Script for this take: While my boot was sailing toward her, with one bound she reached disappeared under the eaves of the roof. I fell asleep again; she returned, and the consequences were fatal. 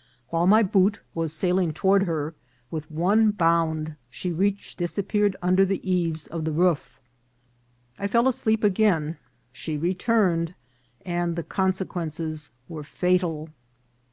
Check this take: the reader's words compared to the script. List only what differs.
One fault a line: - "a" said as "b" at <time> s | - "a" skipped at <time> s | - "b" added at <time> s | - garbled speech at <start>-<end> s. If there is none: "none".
none